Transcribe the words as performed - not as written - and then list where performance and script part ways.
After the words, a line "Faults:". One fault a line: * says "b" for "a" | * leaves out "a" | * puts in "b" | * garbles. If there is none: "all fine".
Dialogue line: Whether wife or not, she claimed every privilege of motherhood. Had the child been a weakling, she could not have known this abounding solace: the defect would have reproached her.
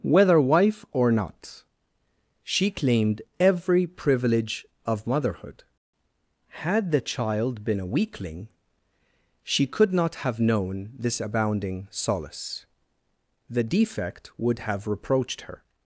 Whether wife or not, she claimed every privilege of motherhood. Had the child been a weakling, she could not have known this abounding solace: the defect would have reproached her.
Faults:
all fine